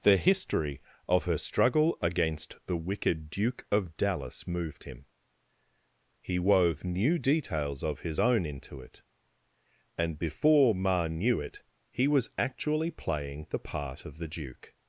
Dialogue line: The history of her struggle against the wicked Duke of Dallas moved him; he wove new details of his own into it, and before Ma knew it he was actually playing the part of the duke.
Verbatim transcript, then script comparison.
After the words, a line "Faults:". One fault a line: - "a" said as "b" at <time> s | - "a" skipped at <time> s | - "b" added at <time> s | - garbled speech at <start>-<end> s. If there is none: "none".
The history of her struggle against the wicked Duke of Dallas moved him; he wove new details of his own into it, and before Ma knew it he was actually playing the part of the duke.
Faults:
none